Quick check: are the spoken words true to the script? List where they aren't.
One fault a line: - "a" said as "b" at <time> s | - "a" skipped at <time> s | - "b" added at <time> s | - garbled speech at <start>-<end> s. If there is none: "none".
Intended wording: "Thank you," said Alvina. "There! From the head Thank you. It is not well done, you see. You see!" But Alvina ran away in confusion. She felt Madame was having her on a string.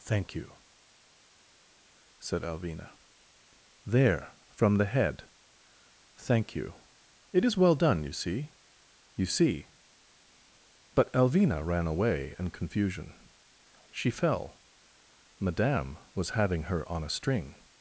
- "not" skipped at 7.6 s
- "felt" said as "fell" at 14.1 s